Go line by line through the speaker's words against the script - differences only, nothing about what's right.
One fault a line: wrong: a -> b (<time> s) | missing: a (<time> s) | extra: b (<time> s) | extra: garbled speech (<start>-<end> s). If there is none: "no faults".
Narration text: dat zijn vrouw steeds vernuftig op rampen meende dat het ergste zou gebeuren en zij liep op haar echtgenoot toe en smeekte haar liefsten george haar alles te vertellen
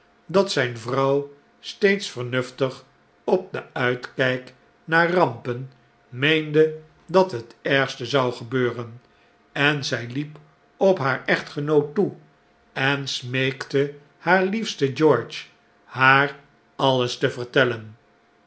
extra: den uitkijk naar (3.5 s)